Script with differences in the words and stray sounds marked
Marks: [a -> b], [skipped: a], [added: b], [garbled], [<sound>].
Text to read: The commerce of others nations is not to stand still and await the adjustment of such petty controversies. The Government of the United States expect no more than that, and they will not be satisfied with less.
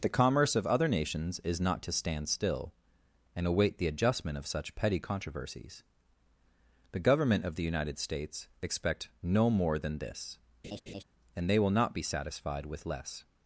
The commerce of [others -> other] nations is not to stand still and await the adjustment of such petty controversies. The Government of the United States expect no more than [that, -> this] [laugh] and they will not be satisfied with less.